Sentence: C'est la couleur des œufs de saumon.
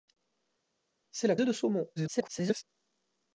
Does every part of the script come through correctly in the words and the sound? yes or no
no